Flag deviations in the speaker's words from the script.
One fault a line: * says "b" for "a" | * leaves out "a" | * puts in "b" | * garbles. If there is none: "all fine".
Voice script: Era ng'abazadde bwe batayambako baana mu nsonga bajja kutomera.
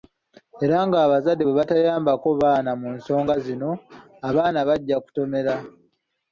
* puts in "zino abaana"